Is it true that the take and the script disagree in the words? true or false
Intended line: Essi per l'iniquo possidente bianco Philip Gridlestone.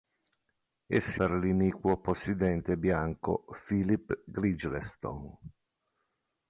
false